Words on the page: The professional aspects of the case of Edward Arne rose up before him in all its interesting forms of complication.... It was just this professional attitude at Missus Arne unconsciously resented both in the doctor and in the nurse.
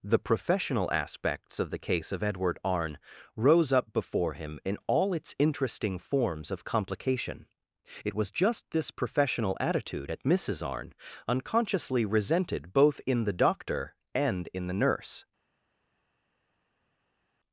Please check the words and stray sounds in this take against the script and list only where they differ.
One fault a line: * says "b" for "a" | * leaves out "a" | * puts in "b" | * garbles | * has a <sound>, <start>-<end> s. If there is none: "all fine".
all fine